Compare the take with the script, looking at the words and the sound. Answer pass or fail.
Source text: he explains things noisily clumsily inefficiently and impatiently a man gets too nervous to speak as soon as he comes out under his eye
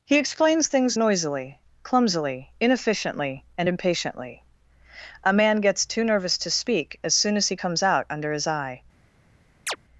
fail